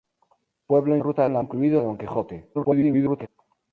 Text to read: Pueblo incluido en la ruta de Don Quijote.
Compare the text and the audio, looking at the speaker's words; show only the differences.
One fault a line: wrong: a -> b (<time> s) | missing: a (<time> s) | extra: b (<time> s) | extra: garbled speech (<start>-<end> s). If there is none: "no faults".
wrong: incluido -> ruta (1.0 s)
wrong: ruta -> incluido (1.4 s)
extra: garbled speech (2.5-3.3 s)